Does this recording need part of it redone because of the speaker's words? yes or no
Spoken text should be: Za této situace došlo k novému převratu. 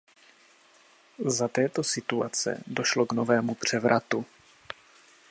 no